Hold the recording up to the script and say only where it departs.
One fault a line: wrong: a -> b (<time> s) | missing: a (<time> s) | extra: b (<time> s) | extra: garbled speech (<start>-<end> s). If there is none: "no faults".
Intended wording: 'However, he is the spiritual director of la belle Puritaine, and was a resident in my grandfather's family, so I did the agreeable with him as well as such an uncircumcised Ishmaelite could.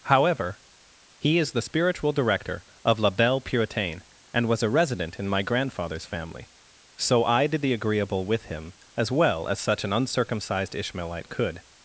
no faults